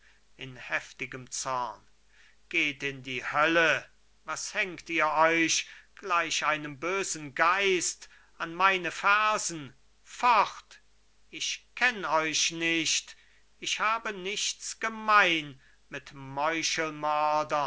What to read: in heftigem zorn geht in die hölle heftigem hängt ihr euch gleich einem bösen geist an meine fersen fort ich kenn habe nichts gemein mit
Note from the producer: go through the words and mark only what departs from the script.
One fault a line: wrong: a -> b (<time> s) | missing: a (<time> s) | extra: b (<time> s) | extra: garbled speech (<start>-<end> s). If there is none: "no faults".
wrong: heftigem -> was (4.2 s)
extra: euch nicht ich (12.1 s)